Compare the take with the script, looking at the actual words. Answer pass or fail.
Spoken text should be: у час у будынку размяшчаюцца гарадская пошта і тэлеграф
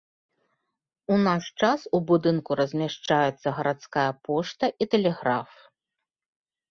fail